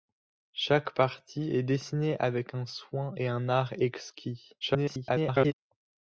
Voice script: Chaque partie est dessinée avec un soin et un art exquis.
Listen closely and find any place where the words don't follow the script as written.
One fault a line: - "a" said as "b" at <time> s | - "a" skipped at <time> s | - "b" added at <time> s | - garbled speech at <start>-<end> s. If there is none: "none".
- garbled speech at 4.6-5.5 s